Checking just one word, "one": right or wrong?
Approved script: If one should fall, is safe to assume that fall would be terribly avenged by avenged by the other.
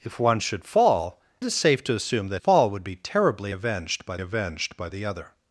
right